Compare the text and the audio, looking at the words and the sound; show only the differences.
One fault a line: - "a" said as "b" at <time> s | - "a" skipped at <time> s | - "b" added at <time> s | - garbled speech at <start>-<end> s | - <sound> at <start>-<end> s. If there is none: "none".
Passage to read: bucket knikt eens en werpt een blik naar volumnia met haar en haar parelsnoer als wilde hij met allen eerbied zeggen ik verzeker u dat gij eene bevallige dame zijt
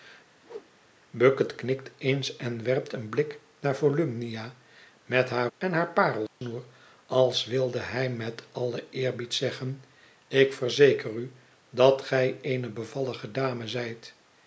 - whoosh at 0.4-0.7 s
- dropout at 6.3-6.4 s